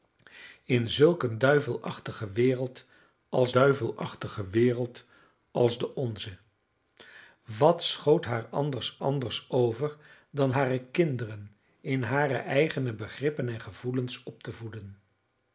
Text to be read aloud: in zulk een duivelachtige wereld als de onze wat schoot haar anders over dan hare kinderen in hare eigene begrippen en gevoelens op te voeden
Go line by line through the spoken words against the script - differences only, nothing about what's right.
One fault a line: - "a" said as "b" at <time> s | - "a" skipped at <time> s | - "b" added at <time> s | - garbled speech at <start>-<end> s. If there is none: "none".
- "duivelachtige wereld als" added at 3.5 s
- "anders" added at 9.0 s